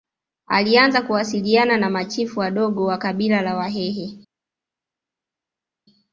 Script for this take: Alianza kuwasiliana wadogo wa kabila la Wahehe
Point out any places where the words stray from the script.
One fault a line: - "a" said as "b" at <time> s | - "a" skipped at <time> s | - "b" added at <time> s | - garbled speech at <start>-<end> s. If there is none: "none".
- "na machifu" added at 1.8 s